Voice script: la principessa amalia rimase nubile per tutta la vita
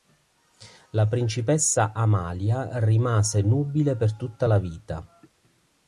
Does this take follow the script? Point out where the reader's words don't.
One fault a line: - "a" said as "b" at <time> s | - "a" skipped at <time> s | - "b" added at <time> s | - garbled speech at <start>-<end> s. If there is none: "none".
none